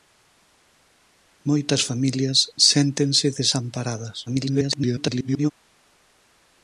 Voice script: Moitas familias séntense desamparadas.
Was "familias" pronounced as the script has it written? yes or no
yes